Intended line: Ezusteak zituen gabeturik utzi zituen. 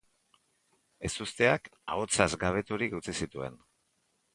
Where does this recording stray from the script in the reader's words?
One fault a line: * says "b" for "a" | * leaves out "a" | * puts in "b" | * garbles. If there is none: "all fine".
* says "ahotsaz" for "zituen"